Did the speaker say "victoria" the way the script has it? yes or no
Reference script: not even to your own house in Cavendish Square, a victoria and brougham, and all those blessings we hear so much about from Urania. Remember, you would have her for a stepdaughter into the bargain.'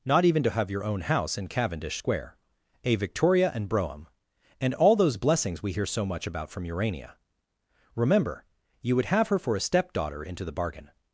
yes